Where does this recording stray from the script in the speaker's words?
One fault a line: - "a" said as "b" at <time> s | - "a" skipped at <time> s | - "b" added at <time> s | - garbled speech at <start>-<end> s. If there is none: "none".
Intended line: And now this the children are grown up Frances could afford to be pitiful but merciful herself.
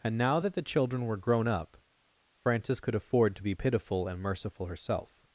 - "this" said as "that" at 0.4 s
- "are" said as "were" at 1.1 s
- "but" said as "and" at 4.1 s